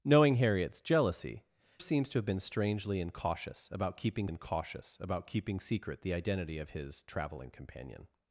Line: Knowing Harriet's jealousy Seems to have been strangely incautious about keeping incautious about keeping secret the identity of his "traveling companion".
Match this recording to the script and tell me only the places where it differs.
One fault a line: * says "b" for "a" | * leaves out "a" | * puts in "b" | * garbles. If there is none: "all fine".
all fine